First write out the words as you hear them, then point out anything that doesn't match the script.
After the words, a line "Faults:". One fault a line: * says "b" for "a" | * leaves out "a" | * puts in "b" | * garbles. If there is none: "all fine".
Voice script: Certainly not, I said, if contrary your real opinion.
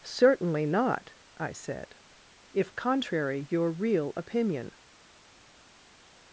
Certainly not, I said, if contrary your real opinion.
Faults:
all fine